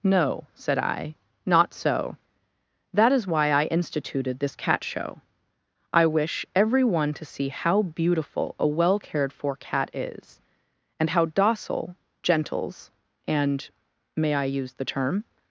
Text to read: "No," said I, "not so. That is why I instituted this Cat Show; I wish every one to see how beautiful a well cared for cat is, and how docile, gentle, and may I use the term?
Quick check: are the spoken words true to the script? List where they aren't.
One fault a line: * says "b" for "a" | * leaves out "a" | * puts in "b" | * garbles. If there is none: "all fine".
* says "gentles" for "gentle"